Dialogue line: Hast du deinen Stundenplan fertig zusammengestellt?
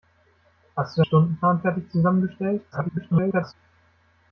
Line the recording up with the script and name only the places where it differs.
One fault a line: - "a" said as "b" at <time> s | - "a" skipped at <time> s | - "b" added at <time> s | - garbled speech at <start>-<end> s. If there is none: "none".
- "deinen" skipped at 1.0 s
- garbled speech at 2.7-3.5 s